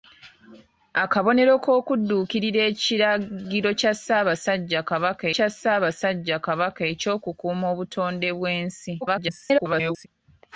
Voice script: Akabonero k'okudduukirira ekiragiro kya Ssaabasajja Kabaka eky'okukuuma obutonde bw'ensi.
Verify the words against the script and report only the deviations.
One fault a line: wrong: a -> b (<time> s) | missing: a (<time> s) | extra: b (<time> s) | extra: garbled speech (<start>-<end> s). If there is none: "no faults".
extra: kya Ssaabasajja Kabaka (5.3 s)
extra: garbled speech (9.0-10.1 s)